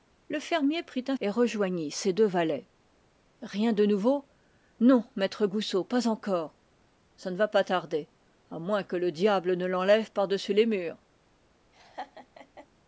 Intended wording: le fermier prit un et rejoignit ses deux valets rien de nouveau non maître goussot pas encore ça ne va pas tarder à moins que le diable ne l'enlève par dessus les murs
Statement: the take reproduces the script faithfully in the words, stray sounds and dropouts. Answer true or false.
false